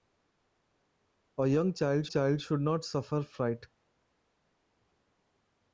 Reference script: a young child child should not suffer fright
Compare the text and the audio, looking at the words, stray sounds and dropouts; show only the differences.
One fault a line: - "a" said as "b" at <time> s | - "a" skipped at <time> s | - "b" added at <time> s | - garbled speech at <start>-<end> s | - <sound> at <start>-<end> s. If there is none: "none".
none